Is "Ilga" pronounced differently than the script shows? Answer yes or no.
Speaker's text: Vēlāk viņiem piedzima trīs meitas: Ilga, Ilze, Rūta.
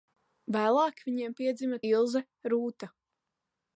yes